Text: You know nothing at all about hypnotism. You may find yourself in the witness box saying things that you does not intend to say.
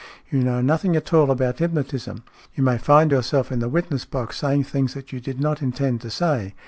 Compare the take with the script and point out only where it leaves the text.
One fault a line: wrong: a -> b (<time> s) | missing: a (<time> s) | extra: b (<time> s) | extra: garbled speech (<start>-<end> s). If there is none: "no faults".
wrong: does -> did (5.2 s)